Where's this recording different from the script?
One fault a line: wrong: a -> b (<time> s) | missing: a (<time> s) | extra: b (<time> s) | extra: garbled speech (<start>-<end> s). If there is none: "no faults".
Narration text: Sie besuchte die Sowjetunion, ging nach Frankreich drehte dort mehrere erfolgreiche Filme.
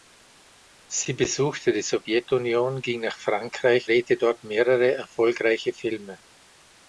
no faults